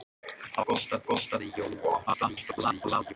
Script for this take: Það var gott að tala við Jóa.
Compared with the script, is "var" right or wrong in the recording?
wrong